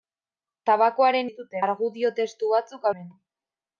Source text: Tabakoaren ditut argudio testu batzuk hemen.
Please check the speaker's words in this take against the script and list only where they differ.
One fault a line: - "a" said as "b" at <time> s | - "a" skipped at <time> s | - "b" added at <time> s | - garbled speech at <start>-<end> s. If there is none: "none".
none